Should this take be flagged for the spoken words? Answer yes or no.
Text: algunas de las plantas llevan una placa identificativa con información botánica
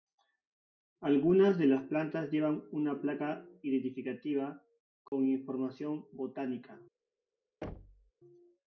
no